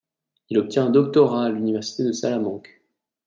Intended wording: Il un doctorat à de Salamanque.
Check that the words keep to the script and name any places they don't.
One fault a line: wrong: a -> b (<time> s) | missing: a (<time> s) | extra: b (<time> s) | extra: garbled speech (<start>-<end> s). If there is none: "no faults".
extra: obtient (0.6 s)
extra: l'université (1.5 s)